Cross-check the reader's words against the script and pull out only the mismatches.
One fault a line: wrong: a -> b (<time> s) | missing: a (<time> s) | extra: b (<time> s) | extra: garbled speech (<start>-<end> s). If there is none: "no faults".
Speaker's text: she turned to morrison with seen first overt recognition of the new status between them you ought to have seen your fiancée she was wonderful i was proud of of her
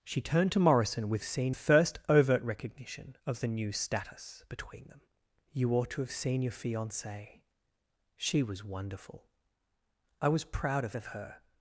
no faults